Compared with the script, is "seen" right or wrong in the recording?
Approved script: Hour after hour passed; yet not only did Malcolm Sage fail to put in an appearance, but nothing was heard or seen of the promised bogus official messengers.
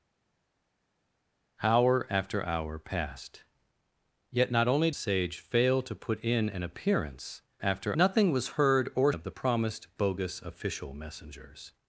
wrong